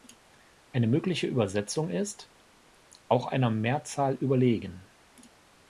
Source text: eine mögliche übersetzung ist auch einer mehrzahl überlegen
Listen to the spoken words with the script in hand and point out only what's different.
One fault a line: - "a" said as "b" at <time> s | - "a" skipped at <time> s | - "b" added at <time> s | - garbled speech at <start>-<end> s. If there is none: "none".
none